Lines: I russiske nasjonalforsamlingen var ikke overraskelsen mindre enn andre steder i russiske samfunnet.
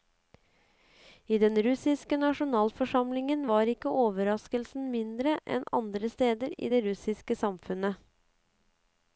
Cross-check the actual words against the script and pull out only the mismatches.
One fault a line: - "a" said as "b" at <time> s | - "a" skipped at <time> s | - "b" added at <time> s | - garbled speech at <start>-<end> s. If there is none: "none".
- "den" added at 1.4 s
- "det" added at 6.7 s